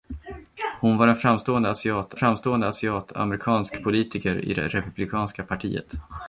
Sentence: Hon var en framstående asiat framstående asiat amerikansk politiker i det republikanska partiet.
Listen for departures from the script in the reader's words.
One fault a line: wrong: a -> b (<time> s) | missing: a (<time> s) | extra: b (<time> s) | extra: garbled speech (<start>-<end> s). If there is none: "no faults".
no faults